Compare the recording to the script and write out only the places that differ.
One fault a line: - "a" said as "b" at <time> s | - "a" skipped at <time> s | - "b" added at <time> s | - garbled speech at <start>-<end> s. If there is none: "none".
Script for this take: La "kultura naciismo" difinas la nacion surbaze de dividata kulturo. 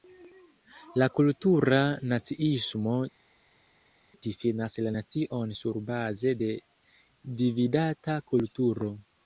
none